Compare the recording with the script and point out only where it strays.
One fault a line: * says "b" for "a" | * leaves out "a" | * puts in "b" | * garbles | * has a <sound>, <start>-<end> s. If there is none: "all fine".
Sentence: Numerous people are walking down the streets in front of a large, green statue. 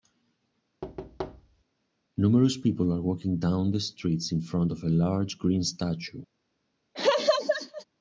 * has a thud, 0.8-1.6 s
* has a laugh, 6.9-7.8 s